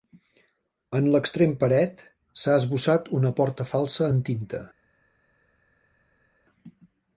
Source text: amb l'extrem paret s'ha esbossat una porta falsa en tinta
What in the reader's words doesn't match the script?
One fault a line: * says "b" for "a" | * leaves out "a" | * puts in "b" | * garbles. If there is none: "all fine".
* says "en" for "amb"